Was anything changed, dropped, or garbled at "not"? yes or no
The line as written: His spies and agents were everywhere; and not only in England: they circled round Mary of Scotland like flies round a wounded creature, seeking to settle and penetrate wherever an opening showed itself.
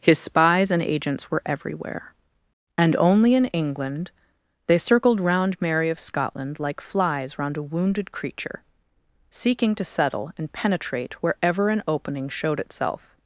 yes